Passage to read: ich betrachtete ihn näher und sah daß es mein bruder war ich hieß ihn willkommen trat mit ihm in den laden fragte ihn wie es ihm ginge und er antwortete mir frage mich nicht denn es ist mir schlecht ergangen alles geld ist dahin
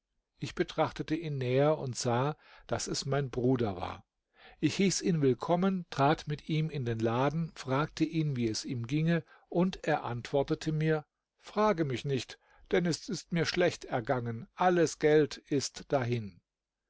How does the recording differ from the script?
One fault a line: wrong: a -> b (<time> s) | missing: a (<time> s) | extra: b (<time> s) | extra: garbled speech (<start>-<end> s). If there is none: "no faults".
no faults